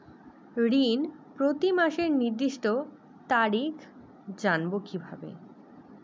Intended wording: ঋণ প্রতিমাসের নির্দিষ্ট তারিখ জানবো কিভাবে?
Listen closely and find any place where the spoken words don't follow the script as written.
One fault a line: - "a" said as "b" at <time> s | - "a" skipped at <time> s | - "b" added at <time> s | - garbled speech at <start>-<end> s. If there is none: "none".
none